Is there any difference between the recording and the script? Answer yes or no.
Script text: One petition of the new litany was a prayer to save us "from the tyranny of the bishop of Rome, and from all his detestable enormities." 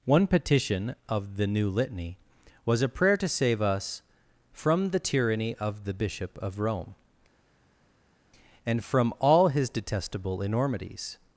no